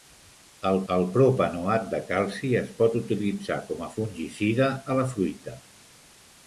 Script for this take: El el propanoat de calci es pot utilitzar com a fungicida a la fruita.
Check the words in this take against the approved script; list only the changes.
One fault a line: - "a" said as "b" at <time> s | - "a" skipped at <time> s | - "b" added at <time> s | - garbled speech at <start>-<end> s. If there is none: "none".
none